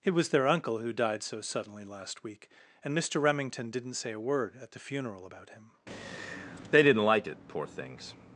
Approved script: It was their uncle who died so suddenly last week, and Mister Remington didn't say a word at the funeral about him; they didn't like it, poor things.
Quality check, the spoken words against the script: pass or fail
pass